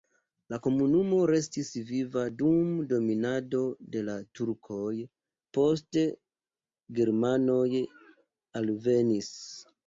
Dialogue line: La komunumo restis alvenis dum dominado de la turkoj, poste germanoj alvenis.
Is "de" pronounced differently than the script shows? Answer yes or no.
no